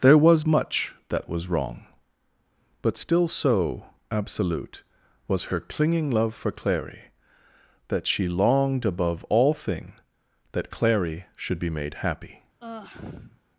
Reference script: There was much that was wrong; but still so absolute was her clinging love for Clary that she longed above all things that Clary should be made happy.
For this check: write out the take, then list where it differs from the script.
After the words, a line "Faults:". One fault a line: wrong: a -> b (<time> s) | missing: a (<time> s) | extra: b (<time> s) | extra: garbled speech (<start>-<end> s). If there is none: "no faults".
There was much that was wrong; but still so absolute was her clinging love for Clary that she longed above all thing that Clary should be made happy.
Faults:
wrong: things -> thing (9.5 s)